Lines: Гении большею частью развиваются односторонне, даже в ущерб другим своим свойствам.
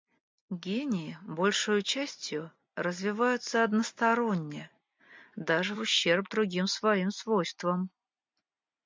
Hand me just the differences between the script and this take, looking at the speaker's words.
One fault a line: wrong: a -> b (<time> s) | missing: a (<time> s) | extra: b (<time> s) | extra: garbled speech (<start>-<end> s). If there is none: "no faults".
no faults